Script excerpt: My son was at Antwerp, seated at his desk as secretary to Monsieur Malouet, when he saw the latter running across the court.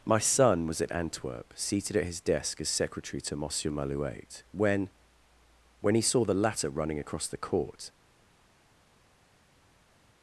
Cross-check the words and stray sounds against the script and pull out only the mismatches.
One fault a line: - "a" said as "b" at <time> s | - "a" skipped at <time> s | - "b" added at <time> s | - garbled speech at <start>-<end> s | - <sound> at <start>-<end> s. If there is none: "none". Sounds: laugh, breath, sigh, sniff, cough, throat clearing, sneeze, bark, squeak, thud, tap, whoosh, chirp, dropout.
- "when" added at 5.8 s